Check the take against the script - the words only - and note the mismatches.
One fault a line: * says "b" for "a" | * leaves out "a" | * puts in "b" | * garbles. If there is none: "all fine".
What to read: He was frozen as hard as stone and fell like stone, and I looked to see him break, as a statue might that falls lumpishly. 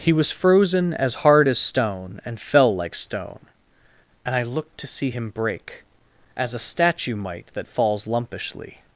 all fine